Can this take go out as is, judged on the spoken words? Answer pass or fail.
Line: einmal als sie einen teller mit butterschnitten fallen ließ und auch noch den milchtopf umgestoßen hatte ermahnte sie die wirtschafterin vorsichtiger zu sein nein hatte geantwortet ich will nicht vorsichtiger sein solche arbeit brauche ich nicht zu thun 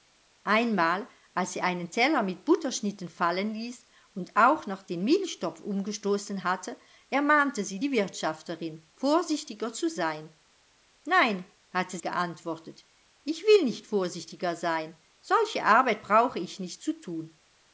pass